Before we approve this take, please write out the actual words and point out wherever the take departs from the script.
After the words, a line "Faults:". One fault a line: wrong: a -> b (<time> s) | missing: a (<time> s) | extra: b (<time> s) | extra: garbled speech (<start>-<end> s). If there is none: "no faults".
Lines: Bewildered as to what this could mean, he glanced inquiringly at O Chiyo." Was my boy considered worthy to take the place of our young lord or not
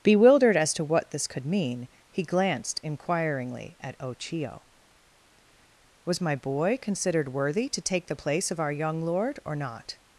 Bewildered as to what this could mean, he glanced inquiringly at O Chiyo." Was my boy considered worthy to take the place of our young lord or not
Faults:
no faults